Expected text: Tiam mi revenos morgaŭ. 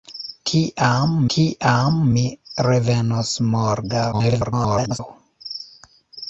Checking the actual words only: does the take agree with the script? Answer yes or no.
no